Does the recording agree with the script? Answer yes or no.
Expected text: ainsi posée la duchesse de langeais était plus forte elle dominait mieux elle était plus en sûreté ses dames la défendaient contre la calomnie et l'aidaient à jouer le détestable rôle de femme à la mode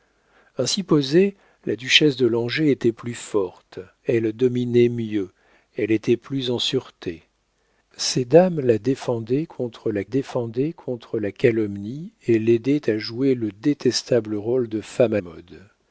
no